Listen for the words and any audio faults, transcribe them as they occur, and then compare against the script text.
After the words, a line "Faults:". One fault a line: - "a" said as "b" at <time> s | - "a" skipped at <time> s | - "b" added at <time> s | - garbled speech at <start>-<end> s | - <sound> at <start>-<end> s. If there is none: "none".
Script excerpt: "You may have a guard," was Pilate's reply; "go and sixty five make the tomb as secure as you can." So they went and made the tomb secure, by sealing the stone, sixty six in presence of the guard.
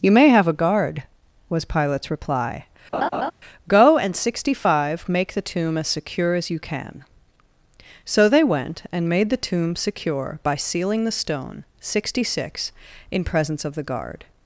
"You may have a guard," was Pilate's reply; "go and sixty five make the tomb as secure as you can." So they went and made the tomb secure, by sealing the stone, sixty six in presence of the guard.
Faults:
- laugh at 2.9-3.3 s